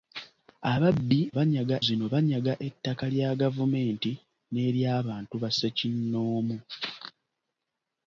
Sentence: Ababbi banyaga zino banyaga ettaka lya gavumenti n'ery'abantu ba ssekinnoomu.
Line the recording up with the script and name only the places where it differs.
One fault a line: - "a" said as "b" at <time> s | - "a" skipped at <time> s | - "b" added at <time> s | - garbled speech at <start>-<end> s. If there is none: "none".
none